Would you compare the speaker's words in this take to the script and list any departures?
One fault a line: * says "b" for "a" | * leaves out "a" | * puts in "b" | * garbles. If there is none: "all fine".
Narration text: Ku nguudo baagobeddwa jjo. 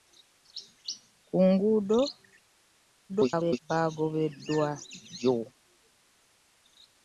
* garbles